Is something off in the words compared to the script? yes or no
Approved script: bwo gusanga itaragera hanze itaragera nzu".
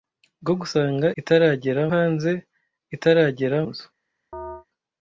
no